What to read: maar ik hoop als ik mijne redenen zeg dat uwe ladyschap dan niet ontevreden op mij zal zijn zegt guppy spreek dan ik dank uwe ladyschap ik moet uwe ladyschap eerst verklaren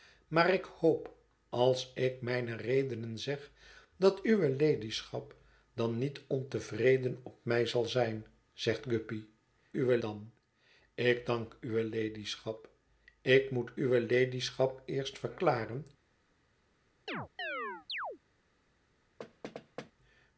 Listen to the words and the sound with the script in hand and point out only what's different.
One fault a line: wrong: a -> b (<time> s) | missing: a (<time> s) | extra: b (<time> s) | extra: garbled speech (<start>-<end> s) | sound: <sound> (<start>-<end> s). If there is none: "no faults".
wrong: spreek -> uwe (9.7 s)
sound: chirp (17.1-18.2 s)
sound: thud (19.2-19.9 s)